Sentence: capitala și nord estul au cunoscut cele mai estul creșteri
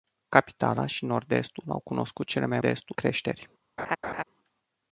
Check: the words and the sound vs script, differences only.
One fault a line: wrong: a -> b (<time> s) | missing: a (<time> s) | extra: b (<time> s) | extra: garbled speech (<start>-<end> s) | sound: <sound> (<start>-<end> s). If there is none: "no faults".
sound: laugh (3.8-4.2 s)